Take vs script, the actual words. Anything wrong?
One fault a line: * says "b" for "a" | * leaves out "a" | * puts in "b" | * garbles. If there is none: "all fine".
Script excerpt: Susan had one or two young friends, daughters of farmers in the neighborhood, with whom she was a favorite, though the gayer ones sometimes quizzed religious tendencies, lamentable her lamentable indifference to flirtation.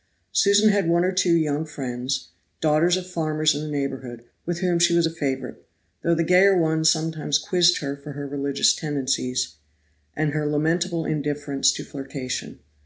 * puts in "her for her"
* says "and" for "lamentable"